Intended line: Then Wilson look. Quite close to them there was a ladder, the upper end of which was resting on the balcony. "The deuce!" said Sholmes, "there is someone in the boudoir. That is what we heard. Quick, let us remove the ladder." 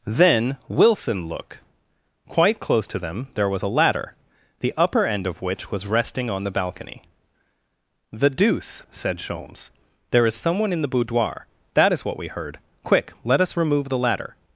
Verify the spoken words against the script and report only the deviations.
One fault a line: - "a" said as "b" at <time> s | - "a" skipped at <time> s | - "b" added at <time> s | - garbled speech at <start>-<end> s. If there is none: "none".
none